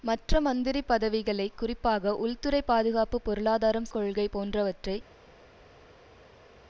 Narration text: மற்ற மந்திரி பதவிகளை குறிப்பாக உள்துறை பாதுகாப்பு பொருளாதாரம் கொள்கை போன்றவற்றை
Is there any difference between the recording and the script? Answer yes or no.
no